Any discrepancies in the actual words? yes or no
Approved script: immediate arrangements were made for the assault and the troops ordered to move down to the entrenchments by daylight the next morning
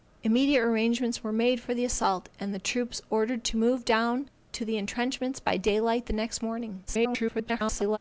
yes